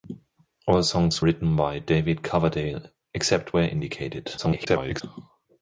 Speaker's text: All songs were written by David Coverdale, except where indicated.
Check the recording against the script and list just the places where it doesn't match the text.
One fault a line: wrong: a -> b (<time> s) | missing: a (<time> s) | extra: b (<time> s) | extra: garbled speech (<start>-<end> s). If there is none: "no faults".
missing: were (1.2 s)
extra: garbled speech (4.4-5.0 s)